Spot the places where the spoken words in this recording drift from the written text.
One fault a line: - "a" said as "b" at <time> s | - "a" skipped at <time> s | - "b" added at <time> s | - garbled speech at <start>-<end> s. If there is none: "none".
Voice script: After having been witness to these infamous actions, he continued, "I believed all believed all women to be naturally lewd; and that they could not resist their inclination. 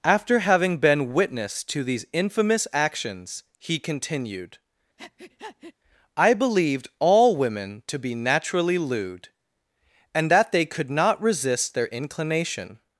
- "believed all" skipped at 7.4 s